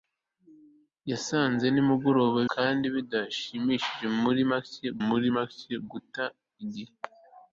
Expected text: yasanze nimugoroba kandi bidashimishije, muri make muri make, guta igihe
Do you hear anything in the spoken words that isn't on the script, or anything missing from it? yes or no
no